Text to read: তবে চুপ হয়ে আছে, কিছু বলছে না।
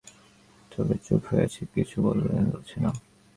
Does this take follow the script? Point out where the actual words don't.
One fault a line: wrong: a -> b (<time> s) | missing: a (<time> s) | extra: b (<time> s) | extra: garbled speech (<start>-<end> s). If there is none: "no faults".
no faults